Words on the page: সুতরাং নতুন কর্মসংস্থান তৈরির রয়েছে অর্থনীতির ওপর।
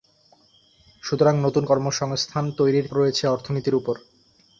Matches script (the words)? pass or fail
pass